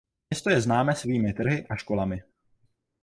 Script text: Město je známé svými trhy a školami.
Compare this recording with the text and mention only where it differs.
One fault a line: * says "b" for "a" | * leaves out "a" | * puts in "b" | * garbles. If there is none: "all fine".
all fine